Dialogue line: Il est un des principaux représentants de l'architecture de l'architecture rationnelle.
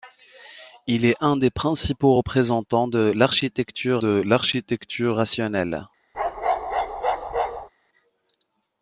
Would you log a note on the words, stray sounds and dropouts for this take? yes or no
yes